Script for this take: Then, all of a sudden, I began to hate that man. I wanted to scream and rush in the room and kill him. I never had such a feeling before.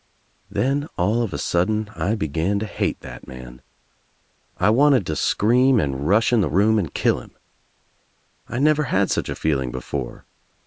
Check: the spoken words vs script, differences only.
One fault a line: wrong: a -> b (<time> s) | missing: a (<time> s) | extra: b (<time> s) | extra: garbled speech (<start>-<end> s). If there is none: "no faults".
no faults